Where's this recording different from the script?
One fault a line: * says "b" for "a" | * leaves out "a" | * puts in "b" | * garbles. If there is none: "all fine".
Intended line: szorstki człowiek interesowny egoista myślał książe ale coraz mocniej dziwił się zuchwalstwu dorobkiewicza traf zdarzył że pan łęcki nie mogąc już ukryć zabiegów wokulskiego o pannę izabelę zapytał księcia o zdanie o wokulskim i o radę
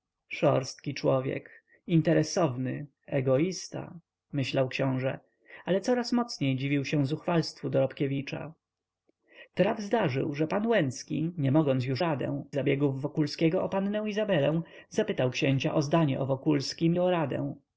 * says "radę" for "ukryć"
* leaves out "i"